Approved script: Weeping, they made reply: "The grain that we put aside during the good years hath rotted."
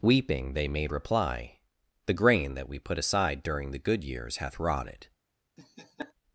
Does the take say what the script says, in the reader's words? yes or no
yes